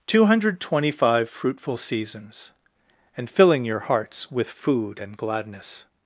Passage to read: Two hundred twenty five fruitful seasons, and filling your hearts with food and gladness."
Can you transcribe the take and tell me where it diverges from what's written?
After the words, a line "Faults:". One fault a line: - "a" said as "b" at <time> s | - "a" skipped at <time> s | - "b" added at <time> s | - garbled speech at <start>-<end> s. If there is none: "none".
Two hundred twenty five fruitful seasons, and filling your hearts with food and gladness."
Faults:
none